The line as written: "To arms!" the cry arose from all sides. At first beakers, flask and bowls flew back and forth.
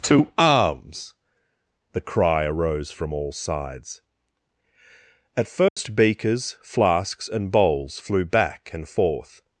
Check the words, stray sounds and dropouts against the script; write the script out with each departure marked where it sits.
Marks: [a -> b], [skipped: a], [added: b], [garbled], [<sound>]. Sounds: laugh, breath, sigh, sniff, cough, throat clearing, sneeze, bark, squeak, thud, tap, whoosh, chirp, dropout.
"To arms!" the cry arose from all sides. At first [dropout] beakers, [flask -> flasks] and bowls flew back and forth.